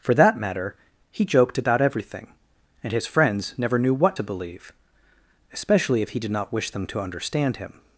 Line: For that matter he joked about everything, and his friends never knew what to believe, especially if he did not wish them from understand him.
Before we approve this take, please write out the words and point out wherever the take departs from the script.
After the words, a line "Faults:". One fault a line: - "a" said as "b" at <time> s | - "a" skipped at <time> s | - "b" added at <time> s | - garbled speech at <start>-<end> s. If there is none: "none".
For that matter he joked about everything, and his friends never knew what to believe, especially if he did not wish them to understand him.
Faults:
- "from" said as "to" at 6.9 s